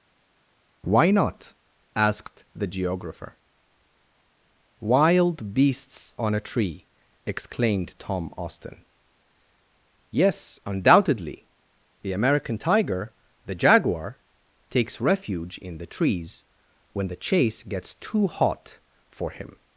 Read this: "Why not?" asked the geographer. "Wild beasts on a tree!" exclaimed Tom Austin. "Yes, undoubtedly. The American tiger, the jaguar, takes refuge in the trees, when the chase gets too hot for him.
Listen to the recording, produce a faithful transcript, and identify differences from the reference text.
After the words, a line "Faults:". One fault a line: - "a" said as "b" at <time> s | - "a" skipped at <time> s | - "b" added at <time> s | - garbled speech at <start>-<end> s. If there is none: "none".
"Why not?" asked the geographer. "Wild beasts on a tree!" exclaimed Tom Austin. "Yes, undoubtedly. The American tiger, the jaguar, takes refuge in the trees, when the chase gets too hot for him.
Faults:
none